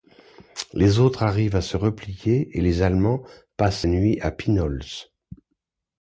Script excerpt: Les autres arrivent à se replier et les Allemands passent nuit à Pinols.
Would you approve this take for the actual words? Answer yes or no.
yes